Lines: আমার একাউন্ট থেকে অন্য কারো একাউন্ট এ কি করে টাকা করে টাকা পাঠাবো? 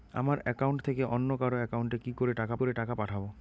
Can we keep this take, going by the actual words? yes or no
yes